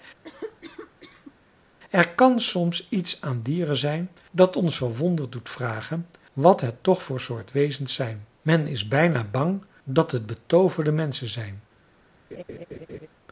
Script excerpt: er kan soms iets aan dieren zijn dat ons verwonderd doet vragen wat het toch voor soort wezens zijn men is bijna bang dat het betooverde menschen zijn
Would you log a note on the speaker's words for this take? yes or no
no